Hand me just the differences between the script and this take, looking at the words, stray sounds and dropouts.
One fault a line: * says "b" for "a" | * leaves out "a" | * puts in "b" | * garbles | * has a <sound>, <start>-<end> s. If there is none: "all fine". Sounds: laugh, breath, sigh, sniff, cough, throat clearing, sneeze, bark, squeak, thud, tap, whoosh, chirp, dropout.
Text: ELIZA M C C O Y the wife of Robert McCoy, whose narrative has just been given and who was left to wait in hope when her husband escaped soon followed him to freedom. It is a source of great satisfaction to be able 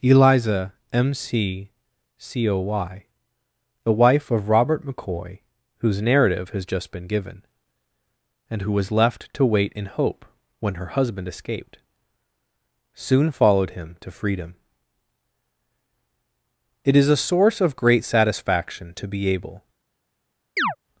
* has a chirp, 20.6-20.8 s